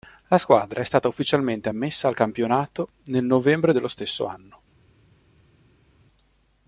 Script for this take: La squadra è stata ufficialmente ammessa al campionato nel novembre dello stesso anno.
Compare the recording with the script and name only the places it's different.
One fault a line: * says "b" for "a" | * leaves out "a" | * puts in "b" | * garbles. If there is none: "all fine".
all fine